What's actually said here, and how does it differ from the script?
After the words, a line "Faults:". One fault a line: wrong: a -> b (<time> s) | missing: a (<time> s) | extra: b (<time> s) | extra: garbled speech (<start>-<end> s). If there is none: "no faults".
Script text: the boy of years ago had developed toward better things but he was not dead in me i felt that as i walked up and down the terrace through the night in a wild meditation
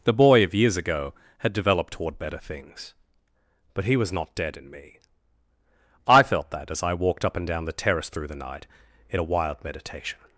the boy of years ago had developed toward better things but he was not dead in me i felt that as i walked up and down the terrace through the night in a wild meditation
Faults:
no faults